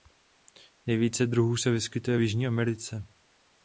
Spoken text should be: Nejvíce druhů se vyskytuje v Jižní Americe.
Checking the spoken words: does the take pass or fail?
pass